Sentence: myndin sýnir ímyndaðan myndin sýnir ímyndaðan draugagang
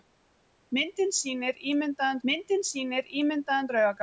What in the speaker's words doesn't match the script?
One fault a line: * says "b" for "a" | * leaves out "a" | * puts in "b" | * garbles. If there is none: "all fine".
all fine